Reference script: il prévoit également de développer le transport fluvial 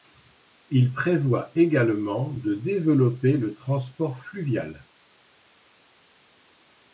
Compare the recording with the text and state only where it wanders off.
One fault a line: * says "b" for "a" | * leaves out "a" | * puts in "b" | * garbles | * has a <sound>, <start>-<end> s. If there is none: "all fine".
all fine